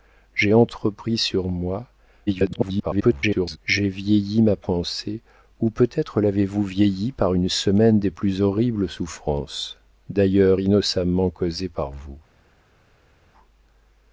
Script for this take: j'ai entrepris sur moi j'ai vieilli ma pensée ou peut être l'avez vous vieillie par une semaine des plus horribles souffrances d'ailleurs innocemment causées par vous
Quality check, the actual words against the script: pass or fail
fail